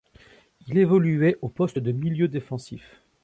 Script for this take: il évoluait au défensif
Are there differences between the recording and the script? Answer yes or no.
yes